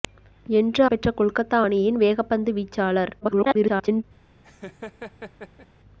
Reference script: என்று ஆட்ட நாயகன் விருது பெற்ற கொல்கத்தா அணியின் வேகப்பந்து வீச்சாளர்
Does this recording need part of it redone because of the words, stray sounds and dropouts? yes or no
yes